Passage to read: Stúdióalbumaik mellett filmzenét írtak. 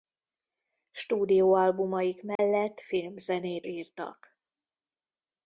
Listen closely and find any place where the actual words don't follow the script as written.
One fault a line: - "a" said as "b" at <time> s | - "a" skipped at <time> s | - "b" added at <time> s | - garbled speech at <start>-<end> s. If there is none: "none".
none